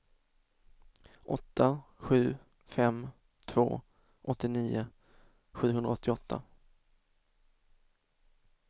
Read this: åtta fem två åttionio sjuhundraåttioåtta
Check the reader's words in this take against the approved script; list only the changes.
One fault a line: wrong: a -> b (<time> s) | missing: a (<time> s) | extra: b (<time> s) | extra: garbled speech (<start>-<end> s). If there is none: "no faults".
extra: sju (2.0 s)